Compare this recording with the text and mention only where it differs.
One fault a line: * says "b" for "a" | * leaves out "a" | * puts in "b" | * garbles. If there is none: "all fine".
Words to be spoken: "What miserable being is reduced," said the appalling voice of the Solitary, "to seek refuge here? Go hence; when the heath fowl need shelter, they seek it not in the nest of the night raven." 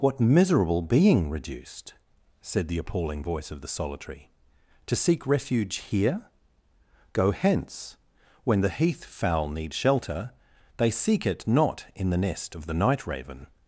* leaves out "is"